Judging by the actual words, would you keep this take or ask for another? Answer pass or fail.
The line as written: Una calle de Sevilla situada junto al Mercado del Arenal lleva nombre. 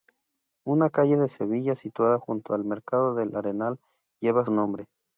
pass